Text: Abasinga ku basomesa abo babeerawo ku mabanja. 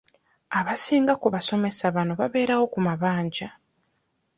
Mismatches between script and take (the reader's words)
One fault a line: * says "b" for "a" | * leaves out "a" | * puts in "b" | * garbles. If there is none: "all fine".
* says "bano" for "abo"